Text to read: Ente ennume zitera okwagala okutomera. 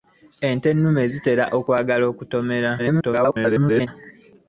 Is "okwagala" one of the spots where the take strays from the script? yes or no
no